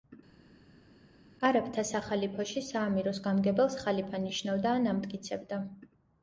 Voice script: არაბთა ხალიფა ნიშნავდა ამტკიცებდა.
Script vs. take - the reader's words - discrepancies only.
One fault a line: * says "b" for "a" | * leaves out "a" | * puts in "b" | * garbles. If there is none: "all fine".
* puts in "სახალიფოში საამიროს გამგებელს"
* puts in "ან"